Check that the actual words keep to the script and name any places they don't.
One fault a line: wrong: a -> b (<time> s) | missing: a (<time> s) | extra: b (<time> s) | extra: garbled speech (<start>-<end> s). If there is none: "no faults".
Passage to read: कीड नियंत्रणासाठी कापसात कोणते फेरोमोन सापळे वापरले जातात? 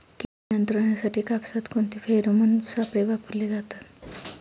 no faults